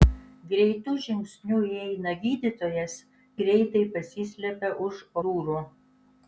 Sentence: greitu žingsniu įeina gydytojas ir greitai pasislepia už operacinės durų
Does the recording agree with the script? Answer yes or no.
no